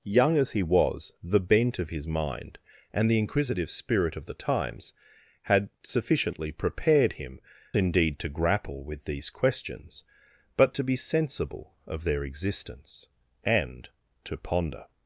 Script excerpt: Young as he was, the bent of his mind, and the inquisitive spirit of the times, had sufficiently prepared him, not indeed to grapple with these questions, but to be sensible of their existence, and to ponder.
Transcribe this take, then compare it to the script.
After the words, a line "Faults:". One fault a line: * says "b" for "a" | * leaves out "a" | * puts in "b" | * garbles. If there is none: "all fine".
Young as he was, the bent of his mind, and the inquisitive spirit of the times, had sufficiently prepared him, indeed to grapple with these questions, but to be sensible of their existence, and to ponder.
Faults:
* leaves out "not"